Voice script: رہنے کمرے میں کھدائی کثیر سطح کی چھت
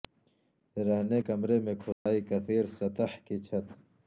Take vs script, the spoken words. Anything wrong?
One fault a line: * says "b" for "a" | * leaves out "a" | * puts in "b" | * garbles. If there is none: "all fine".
all fine